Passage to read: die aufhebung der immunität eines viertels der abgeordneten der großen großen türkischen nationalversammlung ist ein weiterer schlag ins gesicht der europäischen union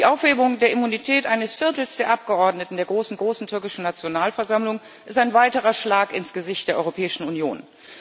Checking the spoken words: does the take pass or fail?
pass